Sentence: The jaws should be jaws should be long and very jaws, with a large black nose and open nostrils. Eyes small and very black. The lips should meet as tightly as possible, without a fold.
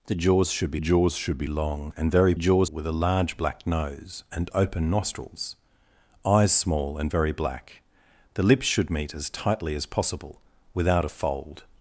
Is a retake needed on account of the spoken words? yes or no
no